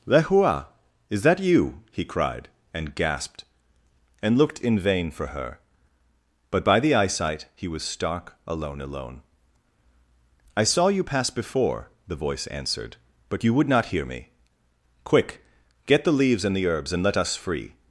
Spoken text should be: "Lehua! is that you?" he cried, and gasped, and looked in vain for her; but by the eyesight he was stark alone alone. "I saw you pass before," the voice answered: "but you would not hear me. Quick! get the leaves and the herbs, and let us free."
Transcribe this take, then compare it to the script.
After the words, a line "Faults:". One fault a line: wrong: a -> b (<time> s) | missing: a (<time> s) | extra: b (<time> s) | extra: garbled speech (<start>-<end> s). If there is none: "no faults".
"Lehua! is that you?" he cried, and gasped, and looked in vain for her; but by the eyesight he was stark alone alone. "I saw you pass before," the voice answered: "but you would not hear me. Quick! get the leaves and the herbs, and let us free."
Faults:
no faults